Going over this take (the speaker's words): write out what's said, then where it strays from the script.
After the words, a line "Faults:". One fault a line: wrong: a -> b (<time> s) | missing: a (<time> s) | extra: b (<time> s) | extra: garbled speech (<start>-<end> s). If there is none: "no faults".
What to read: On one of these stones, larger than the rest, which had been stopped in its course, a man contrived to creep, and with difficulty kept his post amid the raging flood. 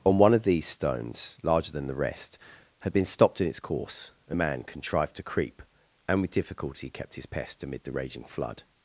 On one of these stones, larger than the rest, had been stopped in its course, a man contrived to creep, and with difficulty kept his pest amid the raging flood.
Faults:
missing: which (2.4 s)
wrong: post -> pest (7.3 s)